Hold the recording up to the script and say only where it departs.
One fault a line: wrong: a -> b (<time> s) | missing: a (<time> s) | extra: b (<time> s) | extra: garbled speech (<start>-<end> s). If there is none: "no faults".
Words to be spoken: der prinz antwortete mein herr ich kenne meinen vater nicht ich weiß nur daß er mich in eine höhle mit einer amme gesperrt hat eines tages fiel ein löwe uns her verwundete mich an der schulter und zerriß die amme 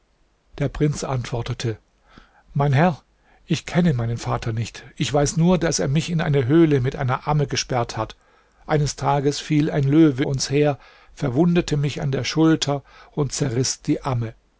no faults